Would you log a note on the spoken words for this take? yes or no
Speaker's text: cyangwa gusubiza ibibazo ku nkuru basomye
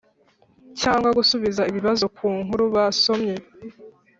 no